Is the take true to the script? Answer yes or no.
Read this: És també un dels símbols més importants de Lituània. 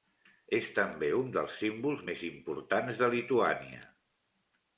yes